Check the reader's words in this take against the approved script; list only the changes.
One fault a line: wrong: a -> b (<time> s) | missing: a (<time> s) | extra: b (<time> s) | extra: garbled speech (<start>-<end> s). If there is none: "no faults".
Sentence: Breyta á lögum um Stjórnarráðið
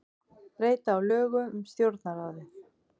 no faults